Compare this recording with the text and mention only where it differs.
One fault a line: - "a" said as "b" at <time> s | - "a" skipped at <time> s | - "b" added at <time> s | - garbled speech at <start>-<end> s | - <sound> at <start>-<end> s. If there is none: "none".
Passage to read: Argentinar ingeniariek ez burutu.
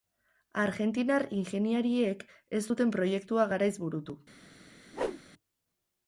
- "zuten proiektua garaiz" added at 2.7 s
- whoosh at 4.9-5.2 s